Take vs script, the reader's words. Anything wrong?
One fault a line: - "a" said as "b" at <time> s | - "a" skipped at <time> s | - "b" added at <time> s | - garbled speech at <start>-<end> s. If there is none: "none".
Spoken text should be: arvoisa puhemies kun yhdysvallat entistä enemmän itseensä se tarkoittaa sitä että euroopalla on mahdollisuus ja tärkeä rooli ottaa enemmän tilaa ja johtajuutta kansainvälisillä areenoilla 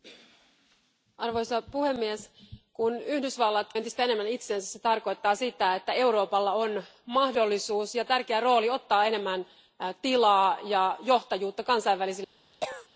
none